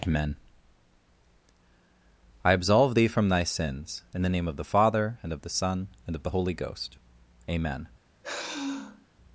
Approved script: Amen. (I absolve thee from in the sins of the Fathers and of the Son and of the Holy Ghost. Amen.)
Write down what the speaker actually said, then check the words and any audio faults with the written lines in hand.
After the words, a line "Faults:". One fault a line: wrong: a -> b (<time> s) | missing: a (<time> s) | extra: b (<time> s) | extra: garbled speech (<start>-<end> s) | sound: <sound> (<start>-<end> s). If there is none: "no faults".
Amen. (I absolve thee from thy sins in the name of the Father and of the Son and of the Holy Ghost. Amen.)
Faults:
extra: thy sins (3.3 s)
wrong: sins -> name (4.3 s)
wrong: Fathers -> Father (4.7 s)
sound: sigh (8.2-9.1 s)